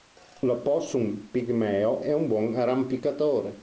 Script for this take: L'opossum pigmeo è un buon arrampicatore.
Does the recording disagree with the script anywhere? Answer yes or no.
no